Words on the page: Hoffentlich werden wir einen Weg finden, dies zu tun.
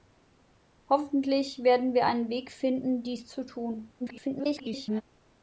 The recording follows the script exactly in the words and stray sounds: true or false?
false